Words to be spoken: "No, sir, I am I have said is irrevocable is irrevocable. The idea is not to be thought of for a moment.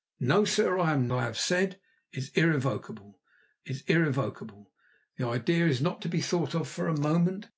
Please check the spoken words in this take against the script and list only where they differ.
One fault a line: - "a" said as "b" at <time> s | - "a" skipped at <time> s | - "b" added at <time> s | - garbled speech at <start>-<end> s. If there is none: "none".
none